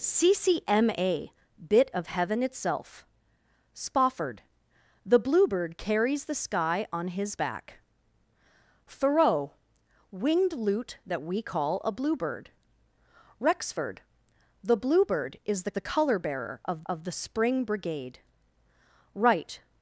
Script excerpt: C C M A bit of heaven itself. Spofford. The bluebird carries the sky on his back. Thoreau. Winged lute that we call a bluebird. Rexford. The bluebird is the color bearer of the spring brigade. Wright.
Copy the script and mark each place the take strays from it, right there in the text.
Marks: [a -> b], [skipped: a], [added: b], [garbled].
C C M A bit of heaven itself. Spofford. The bluebird carries the sky on his back. Thoreau. Winged lute that we call a bluebird. Rexford. The bluebird is the [added: the] color bearer of [added: of] the spring brigade. Wright.